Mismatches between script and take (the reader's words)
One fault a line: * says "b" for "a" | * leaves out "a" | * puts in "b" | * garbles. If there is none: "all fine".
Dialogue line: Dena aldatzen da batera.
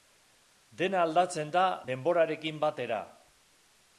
* puts in "denborarekin"